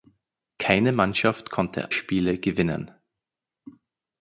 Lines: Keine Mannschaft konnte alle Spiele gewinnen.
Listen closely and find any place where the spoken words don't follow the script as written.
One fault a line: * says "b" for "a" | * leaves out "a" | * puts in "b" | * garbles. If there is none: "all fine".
* leaves out "alle"